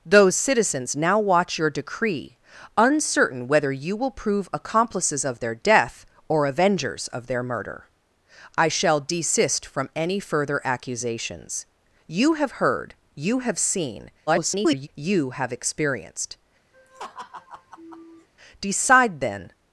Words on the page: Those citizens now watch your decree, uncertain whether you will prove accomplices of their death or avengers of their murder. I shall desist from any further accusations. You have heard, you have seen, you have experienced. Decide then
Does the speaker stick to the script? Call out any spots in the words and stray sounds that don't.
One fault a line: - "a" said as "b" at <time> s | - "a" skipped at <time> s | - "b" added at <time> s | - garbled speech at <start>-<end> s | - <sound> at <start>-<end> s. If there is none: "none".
- garbled speech at 14.3-14.9 s
- laugh at 16.7-18.3 s